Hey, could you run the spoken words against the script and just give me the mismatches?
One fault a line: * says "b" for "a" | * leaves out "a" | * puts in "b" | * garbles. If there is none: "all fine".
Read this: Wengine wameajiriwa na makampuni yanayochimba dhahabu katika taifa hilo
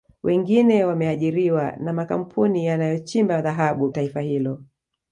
* leaves out "katika"